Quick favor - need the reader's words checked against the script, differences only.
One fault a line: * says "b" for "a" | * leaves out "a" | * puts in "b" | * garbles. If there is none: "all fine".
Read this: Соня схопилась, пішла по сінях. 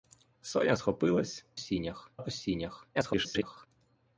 * says "сінях" for "пішла"
* garbles